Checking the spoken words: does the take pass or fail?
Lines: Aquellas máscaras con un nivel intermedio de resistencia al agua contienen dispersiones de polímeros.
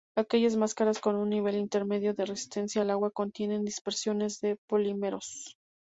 pass